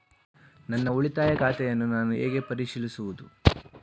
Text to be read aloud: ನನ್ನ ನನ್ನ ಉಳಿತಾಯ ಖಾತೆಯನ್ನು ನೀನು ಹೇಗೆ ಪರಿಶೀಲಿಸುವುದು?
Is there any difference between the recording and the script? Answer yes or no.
yes